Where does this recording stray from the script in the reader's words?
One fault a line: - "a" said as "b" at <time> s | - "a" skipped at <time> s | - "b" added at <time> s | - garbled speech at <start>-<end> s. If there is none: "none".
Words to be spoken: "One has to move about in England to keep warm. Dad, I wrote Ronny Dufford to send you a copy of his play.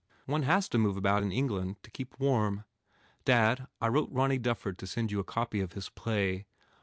none